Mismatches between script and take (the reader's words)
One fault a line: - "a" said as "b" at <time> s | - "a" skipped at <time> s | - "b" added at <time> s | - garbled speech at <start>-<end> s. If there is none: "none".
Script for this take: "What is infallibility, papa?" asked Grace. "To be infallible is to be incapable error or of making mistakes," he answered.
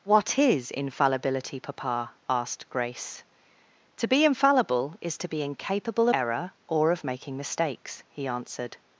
none